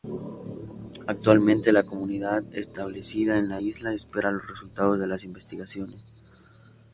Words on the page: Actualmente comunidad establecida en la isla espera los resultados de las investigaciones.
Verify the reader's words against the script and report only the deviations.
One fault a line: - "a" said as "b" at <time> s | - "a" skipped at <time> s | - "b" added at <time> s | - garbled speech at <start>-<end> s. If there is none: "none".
- "la" added at 1.7 s